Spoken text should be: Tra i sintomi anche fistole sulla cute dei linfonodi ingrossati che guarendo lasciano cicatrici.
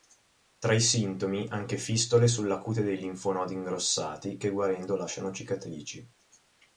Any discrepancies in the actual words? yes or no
no